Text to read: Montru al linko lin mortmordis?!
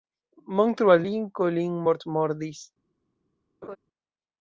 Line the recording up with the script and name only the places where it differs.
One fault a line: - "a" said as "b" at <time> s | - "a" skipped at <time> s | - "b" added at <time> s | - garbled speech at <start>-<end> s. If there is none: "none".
none